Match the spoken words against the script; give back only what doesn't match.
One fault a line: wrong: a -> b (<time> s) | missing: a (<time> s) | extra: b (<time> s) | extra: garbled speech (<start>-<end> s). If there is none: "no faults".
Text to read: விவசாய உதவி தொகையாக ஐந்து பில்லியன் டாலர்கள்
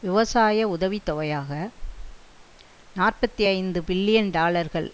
extra: நாற்பத்தி (2.9 s)